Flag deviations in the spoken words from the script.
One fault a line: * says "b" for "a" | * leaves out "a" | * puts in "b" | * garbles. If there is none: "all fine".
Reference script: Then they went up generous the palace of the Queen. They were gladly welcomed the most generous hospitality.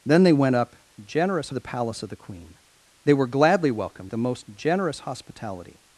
all fine